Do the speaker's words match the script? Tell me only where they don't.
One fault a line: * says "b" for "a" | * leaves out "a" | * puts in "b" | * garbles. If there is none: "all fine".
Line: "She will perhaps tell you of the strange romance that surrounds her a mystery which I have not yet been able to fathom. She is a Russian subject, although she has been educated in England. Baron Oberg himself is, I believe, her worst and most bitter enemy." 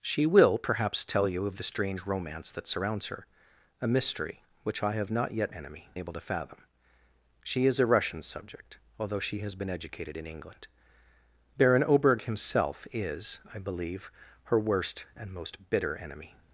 * says "enemy" for "been"